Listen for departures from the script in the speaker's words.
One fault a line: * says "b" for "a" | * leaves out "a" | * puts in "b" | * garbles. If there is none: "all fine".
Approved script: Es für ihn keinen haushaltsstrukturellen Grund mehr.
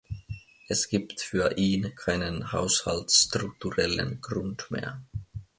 * puts in "gibt"